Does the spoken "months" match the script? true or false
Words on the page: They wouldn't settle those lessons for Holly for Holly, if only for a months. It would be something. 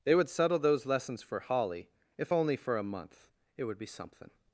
false